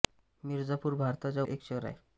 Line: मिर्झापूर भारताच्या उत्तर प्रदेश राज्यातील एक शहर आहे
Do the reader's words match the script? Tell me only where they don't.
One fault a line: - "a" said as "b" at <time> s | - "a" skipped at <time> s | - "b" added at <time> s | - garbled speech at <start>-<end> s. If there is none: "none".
- "उत्तर प्रदेश राज्यातील" skipped at 1.4 s